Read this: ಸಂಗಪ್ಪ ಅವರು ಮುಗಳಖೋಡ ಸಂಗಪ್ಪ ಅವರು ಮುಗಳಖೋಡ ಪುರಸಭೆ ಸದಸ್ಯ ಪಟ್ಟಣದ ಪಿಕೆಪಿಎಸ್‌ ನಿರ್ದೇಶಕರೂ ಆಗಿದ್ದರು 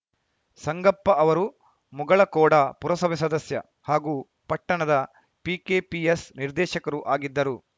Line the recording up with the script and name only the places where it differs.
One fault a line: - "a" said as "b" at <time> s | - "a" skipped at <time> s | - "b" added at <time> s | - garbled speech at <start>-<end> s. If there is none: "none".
- "ಸಂಗಪ್ಪ ಅವರು ಮುಗಳಖೋಡ" skipped at 2.5 s
- "ಹಾಗೂ" added at 3.8 s